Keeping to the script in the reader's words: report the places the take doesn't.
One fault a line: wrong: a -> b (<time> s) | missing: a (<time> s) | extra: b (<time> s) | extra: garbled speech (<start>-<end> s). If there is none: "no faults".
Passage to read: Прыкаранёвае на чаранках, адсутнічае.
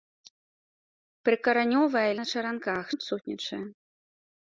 no faults